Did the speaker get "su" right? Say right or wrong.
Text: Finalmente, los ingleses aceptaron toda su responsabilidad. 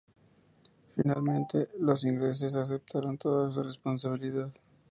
right